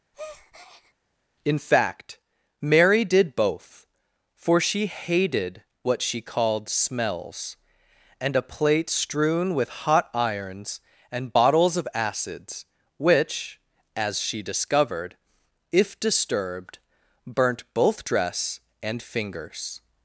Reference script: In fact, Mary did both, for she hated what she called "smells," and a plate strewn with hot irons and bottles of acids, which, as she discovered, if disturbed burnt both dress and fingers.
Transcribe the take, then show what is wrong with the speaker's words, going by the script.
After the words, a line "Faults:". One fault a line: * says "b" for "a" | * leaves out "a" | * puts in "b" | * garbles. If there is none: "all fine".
In fact, Mary did both, for she hated what she called "smells," and a plate strewn with hot irons and bottles of acids, which, as she discovered, if disturbed burnt both dress and fingers.
Faults:
all fine